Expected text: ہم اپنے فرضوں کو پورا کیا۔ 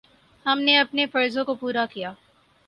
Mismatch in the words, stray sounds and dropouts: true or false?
true